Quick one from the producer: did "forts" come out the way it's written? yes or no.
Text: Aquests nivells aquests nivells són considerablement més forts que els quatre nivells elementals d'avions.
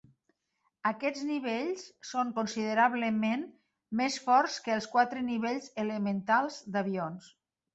yes